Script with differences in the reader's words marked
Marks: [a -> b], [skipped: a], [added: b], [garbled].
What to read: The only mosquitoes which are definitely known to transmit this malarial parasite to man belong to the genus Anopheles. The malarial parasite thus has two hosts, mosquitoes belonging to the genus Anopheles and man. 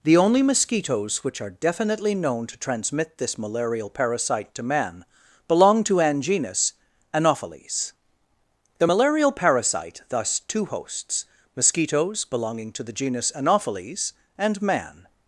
The only mosquitoes which are definitely known to transmit this malarial parasite to man belong to [the -> an] genus Anopheles. The malarial parasite thus [skipped: has] two hosts, mosquitoes belonging to the genus Anopheles and man.